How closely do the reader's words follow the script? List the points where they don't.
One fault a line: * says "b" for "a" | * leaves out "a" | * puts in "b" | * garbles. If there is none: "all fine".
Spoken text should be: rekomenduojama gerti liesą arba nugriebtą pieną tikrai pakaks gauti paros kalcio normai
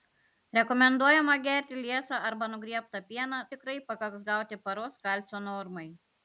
all fine